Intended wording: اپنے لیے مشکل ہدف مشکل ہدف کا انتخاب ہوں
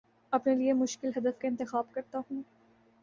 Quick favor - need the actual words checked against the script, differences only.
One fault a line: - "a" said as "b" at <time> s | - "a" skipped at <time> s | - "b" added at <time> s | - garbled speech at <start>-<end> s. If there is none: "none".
- "مشکل ہدف" skipped at 1.4 s
- "کرتا" added at 1.9 s